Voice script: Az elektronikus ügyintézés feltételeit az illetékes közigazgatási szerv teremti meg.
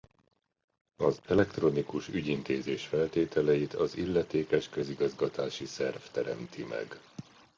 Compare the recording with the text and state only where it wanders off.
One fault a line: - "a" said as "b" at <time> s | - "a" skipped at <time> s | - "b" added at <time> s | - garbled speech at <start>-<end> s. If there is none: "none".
none